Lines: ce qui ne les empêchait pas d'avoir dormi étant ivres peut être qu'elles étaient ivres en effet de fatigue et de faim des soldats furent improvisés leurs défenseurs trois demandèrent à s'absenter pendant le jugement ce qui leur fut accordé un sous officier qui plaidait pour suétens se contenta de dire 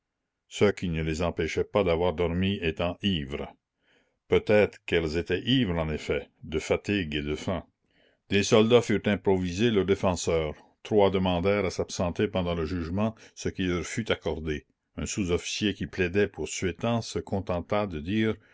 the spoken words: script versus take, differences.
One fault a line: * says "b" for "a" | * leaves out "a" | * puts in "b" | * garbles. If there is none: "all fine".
all fine